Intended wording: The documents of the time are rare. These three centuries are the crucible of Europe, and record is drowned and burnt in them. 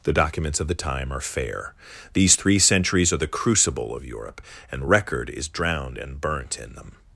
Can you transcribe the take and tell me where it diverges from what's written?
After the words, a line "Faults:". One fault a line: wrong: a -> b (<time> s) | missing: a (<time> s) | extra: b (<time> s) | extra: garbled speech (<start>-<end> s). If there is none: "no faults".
The documents of the time are fair. These three centuries are the crucible of Europe, and record is drowned and burnt in them.
Faults:
wrong: rare -> fair (1.2 s)